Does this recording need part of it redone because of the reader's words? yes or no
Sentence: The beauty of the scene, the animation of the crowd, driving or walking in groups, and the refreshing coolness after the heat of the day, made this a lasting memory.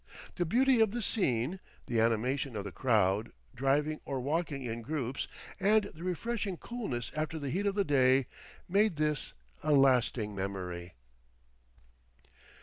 no